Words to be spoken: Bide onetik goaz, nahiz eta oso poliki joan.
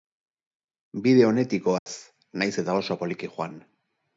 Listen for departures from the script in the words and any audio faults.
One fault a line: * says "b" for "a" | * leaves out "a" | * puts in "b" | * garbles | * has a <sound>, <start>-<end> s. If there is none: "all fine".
* has a dropout, 1.8-1.9 s